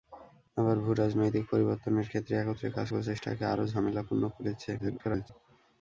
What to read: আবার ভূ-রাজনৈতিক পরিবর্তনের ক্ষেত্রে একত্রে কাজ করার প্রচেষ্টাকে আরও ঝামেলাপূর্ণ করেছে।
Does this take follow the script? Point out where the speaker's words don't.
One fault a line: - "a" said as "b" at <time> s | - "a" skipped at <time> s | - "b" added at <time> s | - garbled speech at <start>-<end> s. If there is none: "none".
- "করার" skipped at 2.9 s
- garbled speech at 4.8-5.3 s